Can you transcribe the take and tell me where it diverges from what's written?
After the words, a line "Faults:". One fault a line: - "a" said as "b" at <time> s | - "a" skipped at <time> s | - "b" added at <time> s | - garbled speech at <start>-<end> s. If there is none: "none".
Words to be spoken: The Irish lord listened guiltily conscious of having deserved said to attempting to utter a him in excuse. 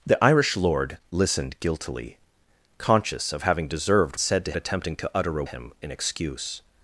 The Irish lord listened guiltily conscious of having deserved said to attempting to utter a him in excuse.
Faults:
none